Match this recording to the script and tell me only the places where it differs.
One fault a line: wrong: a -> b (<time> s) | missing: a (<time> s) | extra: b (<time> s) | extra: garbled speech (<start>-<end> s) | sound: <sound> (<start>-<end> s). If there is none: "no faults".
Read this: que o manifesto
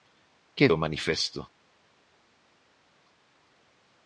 no faults